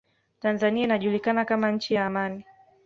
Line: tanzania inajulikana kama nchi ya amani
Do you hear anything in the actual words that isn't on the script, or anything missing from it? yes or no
no